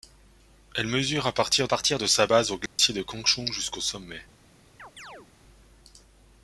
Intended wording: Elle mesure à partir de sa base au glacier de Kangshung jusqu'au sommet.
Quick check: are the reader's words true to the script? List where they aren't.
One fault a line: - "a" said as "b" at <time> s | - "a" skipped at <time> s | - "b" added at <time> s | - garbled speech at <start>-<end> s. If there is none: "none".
- "partir" added at 1.6 s